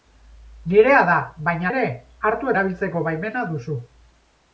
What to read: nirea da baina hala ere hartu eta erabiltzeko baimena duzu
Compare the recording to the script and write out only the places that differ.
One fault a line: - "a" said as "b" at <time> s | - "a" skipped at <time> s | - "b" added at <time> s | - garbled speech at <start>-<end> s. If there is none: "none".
- "hala" skipped at 1.7 s
- "eta" skipped at 2.5 s